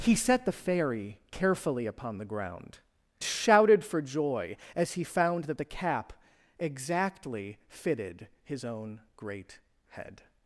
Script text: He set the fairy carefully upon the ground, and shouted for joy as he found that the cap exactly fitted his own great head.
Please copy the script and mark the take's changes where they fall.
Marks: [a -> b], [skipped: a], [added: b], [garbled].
He set the fairy carefully upon the ground, [skipped: and] shouted for joy as he found that the cap exactly fitted his own great head.